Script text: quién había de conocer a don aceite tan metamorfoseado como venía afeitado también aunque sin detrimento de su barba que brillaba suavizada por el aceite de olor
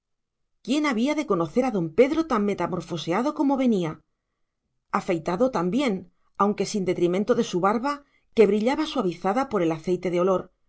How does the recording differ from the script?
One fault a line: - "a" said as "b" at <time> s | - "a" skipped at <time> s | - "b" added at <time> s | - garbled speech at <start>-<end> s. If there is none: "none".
- "aceite" said as "pedro" at 2.0 s